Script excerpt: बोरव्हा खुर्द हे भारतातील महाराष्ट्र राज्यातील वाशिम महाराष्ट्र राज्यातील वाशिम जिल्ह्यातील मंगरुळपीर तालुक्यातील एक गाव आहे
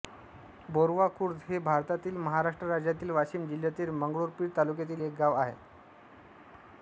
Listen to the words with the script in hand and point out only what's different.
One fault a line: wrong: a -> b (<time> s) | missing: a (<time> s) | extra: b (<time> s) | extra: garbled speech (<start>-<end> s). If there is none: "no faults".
missing: महाराष्ट्र राज्यातील वाशिम (3.5 s)